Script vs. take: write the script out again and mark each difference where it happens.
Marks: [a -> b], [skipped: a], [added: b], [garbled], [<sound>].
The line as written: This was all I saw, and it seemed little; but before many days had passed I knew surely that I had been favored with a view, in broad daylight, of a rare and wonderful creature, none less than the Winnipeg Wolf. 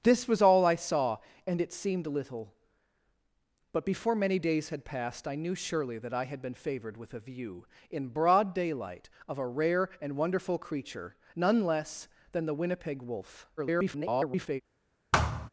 This was all I saw, and it seemed little; but before many days had passed I knew surely that I had been favored with a view, in broad daylight, of a rare and wonderful creature, none less than the Winnipeg Wolf. [garbled] [thud]